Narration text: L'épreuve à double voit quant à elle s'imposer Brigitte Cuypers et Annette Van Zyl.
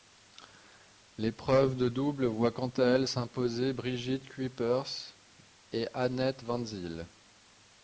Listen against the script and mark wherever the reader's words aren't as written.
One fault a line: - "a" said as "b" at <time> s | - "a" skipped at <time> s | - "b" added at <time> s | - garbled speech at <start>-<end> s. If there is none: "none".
- "à" said as "de" at 1.8 s